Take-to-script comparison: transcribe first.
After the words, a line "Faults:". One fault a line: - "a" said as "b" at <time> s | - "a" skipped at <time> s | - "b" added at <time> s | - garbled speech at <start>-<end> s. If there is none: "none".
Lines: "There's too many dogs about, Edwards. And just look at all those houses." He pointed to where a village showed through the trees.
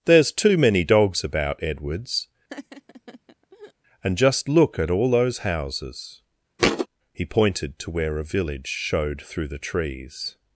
"There's too many dogs about, Edwards. And just look at all those houses." He pointed to where a village showed through the trees.
Faults:
none